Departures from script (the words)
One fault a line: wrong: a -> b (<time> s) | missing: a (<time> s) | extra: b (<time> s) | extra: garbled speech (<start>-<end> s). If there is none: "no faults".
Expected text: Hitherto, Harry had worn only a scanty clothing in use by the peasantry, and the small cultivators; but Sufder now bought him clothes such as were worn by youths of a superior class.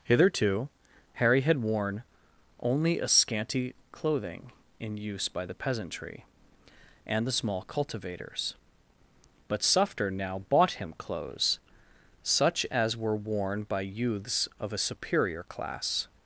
no faults